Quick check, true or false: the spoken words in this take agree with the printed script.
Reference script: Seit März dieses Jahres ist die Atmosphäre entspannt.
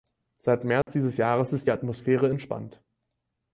true